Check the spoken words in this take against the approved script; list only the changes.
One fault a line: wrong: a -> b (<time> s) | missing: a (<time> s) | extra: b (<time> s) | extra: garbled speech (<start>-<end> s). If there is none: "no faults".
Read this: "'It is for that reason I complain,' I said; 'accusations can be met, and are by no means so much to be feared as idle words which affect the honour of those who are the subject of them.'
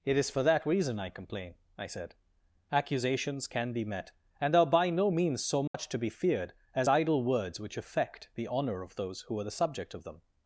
no faults